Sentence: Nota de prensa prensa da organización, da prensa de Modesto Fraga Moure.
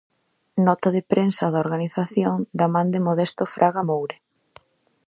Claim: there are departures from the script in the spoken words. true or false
true